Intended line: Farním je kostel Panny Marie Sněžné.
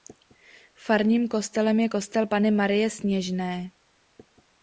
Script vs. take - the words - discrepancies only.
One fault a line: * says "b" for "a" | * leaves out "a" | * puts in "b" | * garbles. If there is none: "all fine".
* puts in "kostelem"